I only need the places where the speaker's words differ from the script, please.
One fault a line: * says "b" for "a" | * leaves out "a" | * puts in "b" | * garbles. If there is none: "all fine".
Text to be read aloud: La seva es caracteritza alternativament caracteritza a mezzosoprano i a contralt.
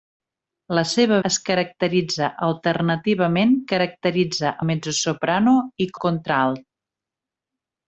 all fine